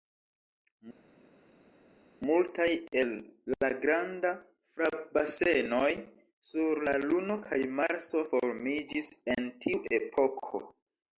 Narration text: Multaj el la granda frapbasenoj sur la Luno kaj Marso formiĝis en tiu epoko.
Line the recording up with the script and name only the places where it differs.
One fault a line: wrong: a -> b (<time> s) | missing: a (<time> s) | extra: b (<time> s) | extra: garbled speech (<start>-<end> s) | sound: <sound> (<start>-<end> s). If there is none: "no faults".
no faults